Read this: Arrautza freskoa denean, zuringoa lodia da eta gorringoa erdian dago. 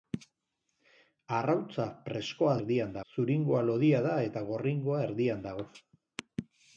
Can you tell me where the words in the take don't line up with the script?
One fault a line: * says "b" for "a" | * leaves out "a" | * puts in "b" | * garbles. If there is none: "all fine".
* says "erdian" for "denean"